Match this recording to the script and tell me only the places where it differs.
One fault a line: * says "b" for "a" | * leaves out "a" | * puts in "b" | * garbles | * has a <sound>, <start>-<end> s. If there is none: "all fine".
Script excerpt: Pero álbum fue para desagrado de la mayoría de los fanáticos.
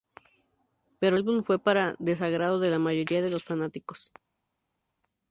all fine